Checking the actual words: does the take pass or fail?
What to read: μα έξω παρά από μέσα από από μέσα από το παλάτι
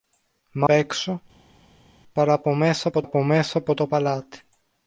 pass